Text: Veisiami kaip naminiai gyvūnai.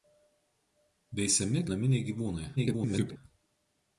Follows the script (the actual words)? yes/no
no